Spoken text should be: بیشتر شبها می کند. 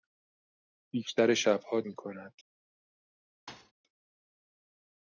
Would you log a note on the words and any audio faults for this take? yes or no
yes